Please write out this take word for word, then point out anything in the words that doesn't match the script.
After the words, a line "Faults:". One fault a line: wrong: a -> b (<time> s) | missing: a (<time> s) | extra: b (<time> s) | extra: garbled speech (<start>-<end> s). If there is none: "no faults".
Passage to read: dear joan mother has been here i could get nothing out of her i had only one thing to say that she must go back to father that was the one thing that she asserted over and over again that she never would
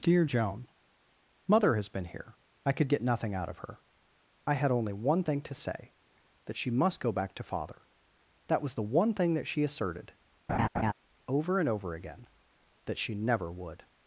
dear joan mother has been here i could get nothing out of her i had only one thing to say that she must go back to father that was the one thing that she asserted over and over again that she never would
Faults:
no faults